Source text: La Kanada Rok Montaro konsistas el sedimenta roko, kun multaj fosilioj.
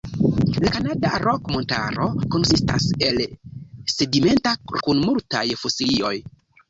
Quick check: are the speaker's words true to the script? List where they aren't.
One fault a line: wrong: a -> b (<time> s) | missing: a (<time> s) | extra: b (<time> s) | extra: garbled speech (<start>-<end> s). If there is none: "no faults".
missing: roko (4.6 s)